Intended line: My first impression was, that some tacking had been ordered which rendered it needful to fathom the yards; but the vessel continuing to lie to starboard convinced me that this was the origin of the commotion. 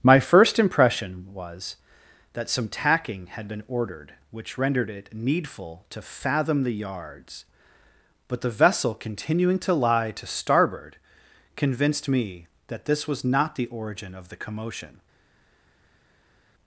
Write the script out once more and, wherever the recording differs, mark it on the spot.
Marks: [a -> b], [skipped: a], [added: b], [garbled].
My first impression was, that some tacking had been ordered which rendered it needful to fathom the yards; but the vessel continuing to lie to starboard convinced me that this was [added: not] the origin of the commotion.